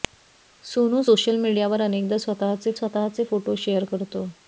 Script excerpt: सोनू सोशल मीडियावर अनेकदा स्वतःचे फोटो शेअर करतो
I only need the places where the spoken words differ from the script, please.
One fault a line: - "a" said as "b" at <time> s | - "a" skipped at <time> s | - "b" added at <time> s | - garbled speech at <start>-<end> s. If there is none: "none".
- "स्वतःचे" added at 2.7 s